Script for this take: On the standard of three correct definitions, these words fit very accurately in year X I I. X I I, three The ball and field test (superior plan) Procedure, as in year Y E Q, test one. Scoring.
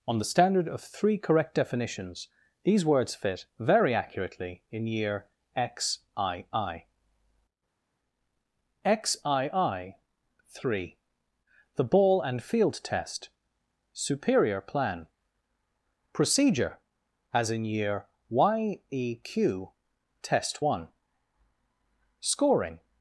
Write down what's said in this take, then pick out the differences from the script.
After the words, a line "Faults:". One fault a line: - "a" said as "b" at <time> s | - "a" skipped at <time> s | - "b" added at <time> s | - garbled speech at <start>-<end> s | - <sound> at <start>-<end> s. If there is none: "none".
On the standard of three correct definitions, these words fit very accurately in year X I I. X I I, three The ball and field test (superior plan) Procedure, as in year Y E Q, test one. Scoring.
Faults:
none